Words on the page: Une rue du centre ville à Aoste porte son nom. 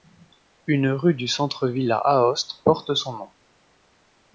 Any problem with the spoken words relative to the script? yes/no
no